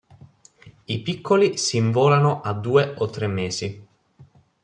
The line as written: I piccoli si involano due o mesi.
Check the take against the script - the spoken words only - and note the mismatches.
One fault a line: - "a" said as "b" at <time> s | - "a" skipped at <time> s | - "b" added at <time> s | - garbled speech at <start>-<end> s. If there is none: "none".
- "a" added at 2.4 s
- "tre" added at 3.1 s